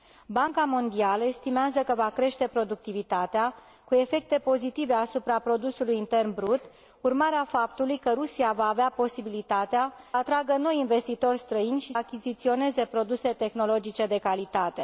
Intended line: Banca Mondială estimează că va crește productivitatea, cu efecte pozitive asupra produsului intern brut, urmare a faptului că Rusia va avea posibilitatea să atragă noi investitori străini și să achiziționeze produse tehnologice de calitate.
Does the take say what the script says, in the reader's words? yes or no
no